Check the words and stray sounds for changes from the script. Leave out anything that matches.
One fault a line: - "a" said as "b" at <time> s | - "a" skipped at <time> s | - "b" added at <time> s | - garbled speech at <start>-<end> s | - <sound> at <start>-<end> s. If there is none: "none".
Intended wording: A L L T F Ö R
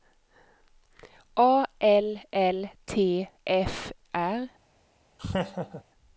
- "Ö" skipped at 3.9 s
- laugh at 5.2-5.8 s